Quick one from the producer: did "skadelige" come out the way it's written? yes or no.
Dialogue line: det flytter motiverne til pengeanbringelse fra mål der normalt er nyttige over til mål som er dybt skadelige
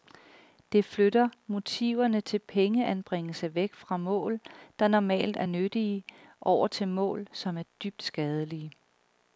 yes